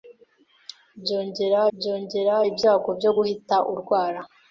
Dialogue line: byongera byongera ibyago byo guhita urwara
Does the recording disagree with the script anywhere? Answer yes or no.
no